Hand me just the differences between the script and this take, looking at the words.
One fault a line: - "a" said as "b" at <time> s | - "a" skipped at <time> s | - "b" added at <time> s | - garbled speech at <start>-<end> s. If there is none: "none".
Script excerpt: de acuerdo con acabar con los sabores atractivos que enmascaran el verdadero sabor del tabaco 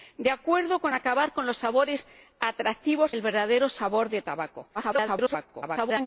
- "que enmascaran" skipped at 3.1 s
- garbled speech at 4.7-6.1 s